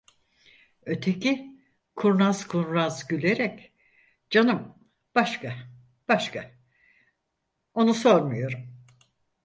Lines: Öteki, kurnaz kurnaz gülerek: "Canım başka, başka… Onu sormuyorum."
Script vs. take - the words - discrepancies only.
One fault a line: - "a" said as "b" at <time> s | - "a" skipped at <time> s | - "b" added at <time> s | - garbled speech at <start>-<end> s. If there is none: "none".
none